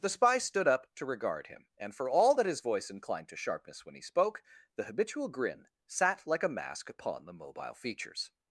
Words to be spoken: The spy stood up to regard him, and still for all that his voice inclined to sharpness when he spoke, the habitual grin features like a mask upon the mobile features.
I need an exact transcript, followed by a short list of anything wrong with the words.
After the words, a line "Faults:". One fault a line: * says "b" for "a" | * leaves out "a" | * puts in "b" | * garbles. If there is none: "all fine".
The spy stood up to regard him, and for all that his voice inclined to sharpness when he spoke, the habitual grin sat like a mask upon the mobile features.
Faults:
* leaves out "still"
* says "sat" for "features"